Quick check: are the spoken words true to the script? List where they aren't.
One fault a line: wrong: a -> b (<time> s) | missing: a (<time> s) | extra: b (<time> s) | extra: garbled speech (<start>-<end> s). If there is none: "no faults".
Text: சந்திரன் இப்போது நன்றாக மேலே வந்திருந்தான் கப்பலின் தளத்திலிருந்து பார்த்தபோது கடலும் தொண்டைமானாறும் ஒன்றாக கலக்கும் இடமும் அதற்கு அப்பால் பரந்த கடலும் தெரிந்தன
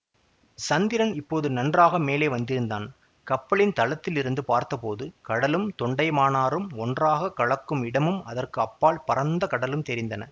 no faults